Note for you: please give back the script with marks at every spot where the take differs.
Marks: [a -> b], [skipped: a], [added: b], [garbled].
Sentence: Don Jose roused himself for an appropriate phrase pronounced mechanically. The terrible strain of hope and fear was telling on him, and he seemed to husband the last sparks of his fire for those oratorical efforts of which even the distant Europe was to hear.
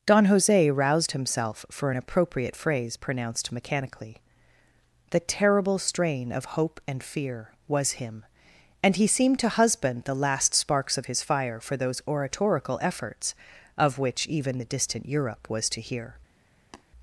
Don Jose roused himself for an appropriate phrase pronounced mechanically. The terrible strain of hope and fear was [skipped: telling on] him, and he seemed to husband the last sparks of his fire for those oratorical efforts of which even the distant Europe was to hear.